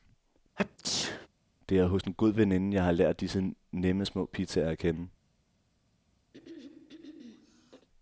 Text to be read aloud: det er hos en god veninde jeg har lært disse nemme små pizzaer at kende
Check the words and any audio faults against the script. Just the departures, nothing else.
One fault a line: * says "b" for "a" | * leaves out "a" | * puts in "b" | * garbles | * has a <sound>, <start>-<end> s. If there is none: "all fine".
* has a sneeze, 0.6-1.3 s
* has a throat clearing, 6.3-7.9 s